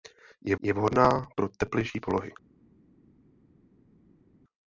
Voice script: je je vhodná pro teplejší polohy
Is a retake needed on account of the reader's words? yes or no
no